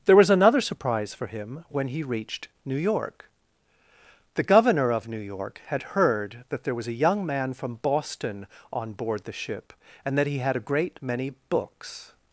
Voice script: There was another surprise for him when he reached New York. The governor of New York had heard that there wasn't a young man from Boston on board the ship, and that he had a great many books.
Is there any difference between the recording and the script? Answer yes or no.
yes